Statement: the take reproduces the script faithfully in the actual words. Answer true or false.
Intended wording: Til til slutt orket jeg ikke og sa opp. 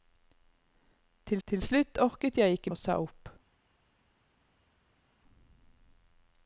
true